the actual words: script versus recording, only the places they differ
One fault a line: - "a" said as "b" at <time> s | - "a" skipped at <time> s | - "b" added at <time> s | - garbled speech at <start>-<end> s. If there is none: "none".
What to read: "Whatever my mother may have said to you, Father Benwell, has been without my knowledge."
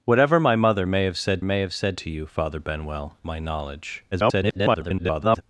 - "may have said" added at 1.4 s
- "has been without" skipped at 3.2 s
- garbled speech at 4.1-5.4 s